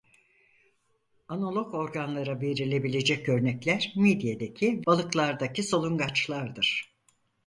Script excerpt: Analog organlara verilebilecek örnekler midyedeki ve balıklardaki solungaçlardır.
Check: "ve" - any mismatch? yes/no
yes